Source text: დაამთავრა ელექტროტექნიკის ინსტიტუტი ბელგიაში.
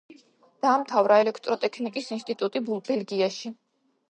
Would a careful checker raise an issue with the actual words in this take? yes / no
no